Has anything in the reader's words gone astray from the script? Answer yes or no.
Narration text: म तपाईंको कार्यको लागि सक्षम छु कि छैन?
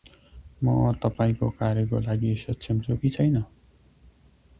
no